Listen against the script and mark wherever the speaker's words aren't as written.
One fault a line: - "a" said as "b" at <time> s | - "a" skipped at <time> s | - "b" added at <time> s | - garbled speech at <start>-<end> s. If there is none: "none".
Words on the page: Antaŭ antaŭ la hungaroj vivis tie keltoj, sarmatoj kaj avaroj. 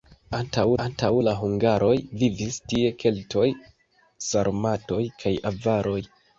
none